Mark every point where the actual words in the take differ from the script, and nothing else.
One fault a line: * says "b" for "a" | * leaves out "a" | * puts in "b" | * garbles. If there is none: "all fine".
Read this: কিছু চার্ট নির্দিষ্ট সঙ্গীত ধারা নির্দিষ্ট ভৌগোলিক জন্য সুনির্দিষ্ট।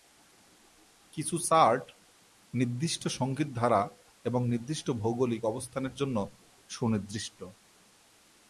* puts in "এবং"
* puts in "অবস্থানের"